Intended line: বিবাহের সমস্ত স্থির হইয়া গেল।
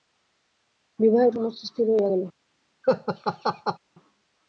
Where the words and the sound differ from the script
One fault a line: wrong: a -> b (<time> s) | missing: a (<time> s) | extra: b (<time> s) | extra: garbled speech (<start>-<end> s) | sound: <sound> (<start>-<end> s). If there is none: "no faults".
sound: laugh (2.8-3.8 s)